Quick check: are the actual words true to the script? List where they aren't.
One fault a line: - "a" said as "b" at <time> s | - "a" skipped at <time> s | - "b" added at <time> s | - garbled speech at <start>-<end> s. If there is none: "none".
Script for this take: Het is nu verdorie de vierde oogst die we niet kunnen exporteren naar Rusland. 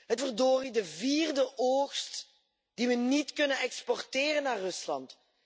- "is nu" skipped at 0.2 s